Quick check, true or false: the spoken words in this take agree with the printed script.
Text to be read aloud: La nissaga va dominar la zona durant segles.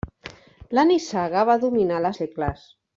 false